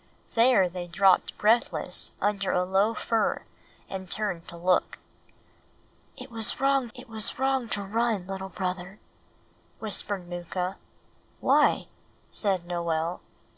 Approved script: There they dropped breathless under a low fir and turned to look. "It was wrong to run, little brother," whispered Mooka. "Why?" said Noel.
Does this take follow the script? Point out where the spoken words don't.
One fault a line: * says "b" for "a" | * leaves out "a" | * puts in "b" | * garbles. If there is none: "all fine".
* puts in "it was wrong"